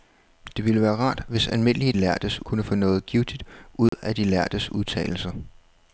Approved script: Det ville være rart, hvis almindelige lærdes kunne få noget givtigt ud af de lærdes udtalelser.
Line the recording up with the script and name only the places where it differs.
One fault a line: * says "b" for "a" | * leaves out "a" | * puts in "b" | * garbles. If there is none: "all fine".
all fine